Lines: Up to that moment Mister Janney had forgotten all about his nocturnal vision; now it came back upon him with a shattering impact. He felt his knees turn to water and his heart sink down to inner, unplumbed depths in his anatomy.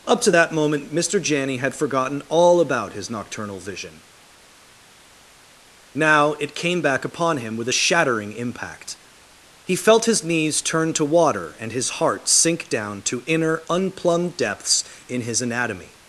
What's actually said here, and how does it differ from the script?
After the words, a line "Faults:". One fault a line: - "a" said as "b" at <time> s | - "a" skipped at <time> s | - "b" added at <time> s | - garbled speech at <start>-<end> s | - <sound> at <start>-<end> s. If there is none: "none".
Up to that moment Mister Janney had forgotten all about his nocturnal vision; now it came back upon him with a shattering impact. He felt his knees turn to water and his heart sink down to inner, unplumbed depths in his anatomy.
Faults:
none